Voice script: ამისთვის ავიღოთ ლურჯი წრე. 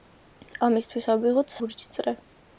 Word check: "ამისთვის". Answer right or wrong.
right